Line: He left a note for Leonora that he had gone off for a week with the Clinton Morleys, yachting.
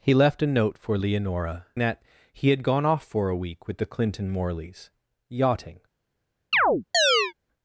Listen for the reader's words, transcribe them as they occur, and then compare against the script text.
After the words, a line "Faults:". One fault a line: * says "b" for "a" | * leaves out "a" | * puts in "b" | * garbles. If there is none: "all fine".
He left a note for Leonora that he had gone off for a week with the Clinton Morleys, yachting.
Faults:
all fine